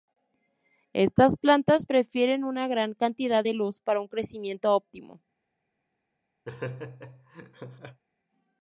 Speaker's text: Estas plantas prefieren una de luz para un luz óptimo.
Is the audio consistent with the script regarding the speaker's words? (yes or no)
no